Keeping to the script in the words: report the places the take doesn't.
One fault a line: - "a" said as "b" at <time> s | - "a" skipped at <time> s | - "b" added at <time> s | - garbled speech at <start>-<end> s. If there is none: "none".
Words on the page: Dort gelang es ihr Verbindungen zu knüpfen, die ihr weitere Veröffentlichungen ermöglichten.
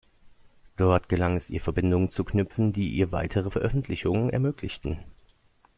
none